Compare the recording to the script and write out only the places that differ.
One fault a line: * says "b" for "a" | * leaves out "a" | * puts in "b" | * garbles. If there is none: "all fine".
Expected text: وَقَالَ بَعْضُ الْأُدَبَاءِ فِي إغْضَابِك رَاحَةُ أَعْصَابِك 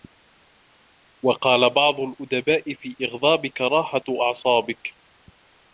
all fine